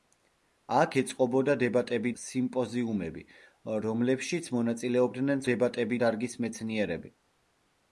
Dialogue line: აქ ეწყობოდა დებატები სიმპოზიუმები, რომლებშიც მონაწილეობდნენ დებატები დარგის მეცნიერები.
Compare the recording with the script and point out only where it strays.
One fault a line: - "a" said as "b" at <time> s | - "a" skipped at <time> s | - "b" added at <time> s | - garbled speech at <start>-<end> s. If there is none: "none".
none